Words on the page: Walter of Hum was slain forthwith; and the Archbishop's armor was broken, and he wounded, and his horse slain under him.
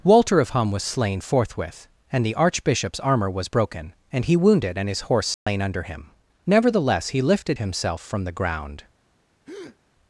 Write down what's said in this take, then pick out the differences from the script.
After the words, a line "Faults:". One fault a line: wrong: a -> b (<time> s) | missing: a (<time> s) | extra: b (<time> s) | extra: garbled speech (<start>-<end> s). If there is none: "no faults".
Walter of Hum was slain forthwith; and the Archbishop's armor was broken, and he wounded, and his horse slain under him. Nevertheless he lifted himself from the ground
Faults:
extra: Nevertheless he lifted himself from the ground (6.5 s)